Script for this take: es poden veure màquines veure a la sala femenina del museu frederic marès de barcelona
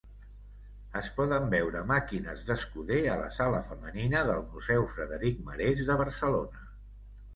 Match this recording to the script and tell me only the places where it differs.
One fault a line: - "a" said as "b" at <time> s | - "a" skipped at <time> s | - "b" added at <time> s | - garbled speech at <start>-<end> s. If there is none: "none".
- "veure" said as "d'escuder" at 2.5 s